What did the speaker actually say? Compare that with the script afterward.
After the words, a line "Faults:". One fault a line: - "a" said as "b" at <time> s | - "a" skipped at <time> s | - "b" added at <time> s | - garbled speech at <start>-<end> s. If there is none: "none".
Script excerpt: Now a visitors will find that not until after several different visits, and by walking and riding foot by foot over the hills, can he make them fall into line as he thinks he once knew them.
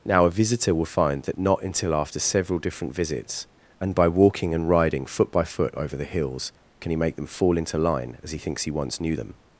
Now a visitor will find that not until after several different visits, and by walking and riding foot by foot over the hills, can he make them fall into line as he thinks he once knew them.
Faults:
- "visitors" said as "visitor" at 0.3 s